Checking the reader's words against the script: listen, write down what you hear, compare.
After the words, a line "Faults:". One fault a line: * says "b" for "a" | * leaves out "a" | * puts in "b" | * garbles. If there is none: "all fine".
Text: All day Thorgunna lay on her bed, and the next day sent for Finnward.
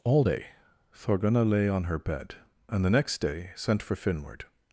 All day Thorgunna lay on her bed, and the next day sent for Finnward.
Faults:
all fine